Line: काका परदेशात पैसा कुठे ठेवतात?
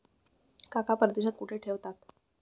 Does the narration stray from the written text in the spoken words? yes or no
yes